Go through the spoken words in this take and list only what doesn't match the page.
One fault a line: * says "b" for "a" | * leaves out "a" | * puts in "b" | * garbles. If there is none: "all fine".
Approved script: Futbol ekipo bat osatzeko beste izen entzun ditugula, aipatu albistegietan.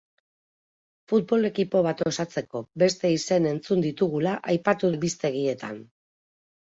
all fine